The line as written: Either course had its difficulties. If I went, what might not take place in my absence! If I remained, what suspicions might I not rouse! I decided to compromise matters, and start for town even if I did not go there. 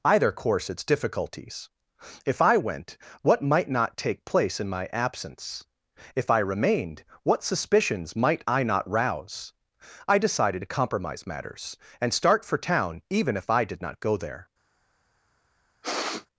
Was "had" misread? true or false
true